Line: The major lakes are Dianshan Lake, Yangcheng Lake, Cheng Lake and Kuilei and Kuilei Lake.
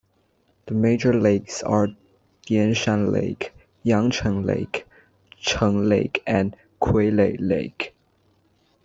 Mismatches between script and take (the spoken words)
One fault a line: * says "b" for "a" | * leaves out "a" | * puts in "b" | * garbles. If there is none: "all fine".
* leaves out "and Kuilei"